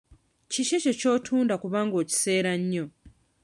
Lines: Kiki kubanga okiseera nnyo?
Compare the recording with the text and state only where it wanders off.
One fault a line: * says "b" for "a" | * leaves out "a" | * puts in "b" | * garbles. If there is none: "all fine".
* puts in "ekyo ky'otunda"